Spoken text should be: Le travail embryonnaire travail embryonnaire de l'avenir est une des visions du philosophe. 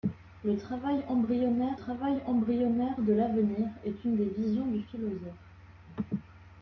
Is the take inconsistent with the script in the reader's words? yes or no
no